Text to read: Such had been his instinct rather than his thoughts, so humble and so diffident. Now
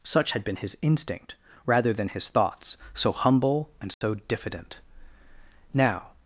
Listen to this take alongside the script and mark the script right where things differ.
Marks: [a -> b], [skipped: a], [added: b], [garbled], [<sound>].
Such had been his instinct rather than his thoughts, so humble and so [dropout] diffident. Now